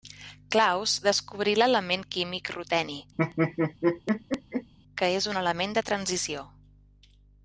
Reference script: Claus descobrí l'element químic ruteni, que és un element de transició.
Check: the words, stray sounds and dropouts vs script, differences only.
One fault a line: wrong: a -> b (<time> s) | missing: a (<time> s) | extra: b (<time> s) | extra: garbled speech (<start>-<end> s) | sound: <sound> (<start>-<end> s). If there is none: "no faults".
sound: laugh (3.2-4.7 s)